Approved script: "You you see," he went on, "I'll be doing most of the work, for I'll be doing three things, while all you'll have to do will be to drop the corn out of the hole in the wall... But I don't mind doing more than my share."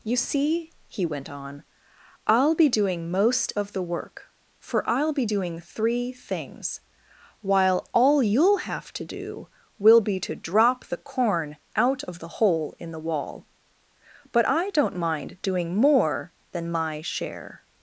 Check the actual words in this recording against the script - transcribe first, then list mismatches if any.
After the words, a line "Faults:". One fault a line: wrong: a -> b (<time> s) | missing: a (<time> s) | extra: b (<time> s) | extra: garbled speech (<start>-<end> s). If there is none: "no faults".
"You see," he went on, "I'll be doing most of the work, for I'll be doing three things, while all you'll have to do will be to drop the corn out of the hole in the wall... But I don't mind doing more than my share."
Faults:
missing: you (0.1 s)